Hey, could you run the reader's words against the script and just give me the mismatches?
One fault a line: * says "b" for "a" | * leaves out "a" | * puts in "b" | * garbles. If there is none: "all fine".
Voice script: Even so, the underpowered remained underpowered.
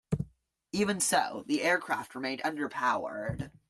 * says "aircraft" for "underpowered"